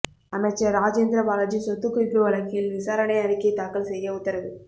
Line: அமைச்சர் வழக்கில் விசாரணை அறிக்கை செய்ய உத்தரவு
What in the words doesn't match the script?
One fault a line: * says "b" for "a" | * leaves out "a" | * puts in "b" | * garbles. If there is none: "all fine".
* puts in "ராஜேந்திர பாலாஜி சொத்துக்குவிப்பு"
* puts in "தாக்கல்"